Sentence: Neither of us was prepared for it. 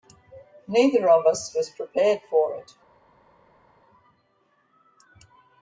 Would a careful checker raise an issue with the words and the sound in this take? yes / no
no